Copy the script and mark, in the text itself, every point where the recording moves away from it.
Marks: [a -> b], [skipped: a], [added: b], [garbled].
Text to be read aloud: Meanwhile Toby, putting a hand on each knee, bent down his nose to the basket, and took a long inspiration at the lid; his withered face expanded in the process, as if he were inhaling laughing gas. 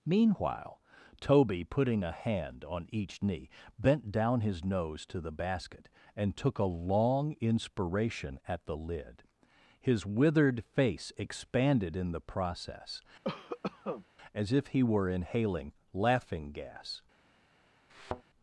Meanwhile Toby, putting a hand on each knee, bent down his nose to the basket, and took a long inspiration at the lid; his withered face expanded in the process, as if he were inhaling laughing gas.